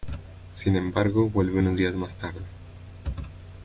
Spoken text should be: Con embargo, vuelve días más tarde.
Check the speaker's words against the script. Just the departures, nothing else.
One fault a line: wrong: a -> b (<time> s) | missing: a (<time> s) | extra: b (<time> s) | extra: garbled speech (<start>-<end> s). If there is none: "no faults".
wrong: Con -> Sin (0.5 s)
extra: unos (1.6 s)